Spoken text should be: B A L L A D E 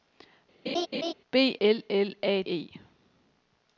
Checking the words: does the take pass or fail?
fail